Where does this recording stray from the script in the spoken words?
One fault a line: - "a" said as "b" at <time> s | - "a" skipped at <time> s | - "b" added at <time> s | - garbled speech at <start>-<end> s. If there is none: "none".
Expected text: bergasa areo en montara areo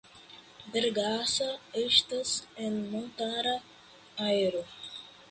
- "areo" said as "estas" at 1.8 s